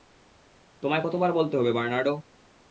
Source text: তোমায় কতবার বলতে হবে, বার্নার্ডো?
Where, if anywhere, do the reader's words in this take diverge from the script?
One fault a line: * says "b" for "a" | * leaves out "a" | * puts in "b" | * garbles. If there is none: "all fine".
all fine